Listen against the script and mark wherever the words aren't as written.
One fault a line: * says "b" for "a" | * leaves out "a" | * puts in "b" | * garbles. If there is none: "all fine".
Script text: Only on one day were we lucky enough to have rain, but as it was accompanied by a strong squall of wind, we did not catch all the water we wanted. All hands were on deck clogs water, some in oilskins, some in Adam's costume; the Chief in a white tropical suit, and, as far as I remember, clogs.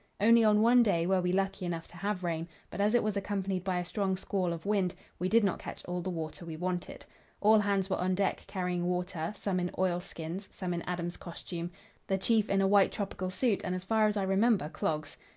* says "carrying" for "clogs"